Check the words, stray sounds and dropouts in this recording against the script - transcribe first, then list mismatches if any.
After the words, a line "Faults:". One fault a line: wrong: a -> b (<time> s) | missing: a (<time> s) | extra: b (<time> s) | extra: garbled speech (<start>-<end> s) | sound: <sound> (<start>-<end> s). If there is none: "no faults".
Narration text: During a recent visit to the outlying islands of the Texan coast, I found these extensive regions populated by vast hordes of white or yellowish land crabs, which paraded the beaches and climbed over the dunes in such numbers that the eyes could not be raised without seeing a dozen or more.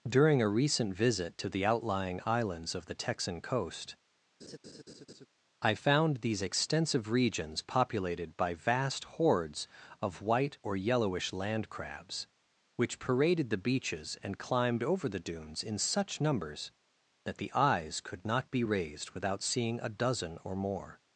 During a recent visit to the outlying islands of the Texan coast, I found these extensive regions populated by vast hordes of white or yellowish land crabs, which paraded the beaches and climbed over the dunes in such numbers that the eyes could not be raised without seeing a dozen or more.
Faults:
sound: laugh (4.4-5.3 s)